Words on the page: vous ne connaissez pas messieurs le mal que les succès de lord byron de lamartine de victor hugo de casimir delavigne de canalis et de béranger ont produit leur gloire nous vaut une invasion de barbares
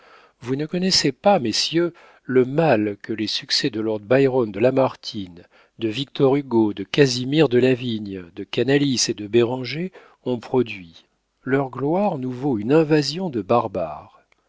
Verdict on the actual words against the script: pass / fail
pass